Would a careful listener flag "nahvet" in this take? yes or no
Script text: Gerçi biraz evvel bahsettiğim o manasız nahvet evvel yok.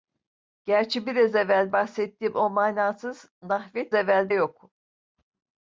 no